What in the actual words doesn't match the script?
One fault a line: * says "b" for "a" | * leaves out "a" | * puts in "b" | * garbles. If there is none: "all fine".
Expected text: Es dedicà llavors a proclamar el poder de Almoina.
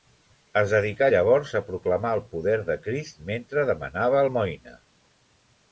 * puts in "Crist mentre demanava"